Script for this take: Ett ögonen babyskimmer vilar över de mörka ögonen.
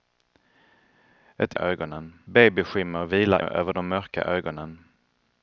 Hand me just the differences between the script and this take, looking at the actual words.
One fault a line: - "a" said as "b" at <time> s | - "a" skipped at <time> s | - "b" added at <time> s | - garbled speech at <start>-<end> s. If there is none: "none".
none